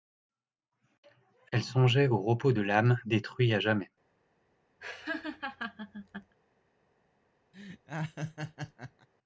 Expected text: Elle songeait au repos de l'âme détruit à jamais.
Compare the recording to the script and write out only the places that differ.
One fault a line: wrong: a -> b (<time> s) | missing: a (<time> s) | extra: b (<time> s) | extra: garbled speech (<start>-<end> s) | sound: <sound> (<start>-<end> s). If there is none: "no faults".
sound: laugh (4.8-6.4 s)
sound: laugh (7.5-9.1 s)